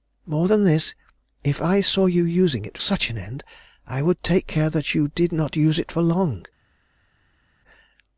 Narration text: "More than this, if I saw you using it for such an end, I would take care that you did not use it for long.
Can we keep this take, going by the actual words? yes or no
no